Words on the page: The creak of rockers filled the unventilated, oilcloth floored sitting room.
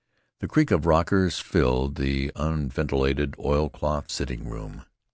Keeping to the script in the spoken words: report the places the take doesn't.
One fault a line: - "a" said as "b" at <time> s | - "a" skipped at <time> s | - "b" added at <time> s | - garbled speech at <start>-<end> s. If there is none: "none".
- "floored" skipped at 4.1 s